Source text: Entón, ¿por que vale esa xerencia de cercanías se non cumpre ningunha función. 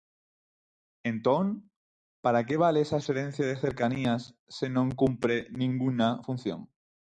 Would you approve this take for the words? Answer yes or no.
no